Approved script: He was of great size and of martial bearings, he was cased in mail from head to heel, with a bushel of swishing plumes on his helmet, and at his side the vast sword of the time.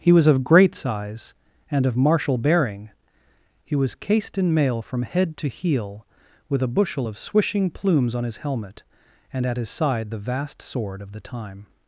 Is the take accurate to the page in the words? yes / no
no